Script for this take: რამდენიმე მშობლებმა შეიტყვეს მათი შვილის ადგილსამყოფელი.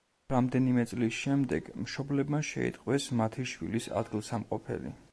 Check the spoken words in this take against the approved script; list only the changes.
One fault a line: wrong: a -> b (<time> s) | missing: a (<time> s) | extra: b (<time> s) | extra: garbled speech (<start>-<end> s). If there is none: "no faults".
extra: წლის შემდეგ (0.9 s)